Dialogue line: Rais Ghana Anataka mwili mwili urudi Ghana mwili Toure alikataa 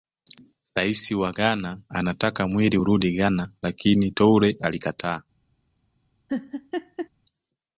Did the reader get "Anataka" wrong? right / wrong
right